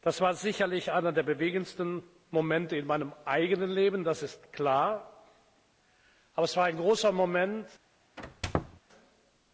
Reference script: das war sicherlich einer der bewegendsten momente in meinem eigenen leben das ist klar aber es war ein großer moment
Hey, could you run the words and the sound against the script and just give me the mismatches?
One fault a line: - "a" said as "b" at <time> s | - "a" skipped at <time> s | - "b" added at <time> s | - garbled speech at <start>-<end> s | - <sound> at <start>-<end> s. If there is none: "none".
- squeak at 8.2-8.8 s